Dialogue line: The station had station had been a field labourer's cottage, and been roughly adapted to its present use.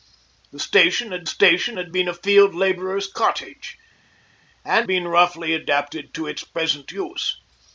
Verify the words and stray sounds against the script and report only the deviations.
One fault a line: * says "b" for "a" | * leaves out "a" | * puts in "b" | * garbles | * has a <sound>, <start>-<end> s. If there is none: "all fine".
all fine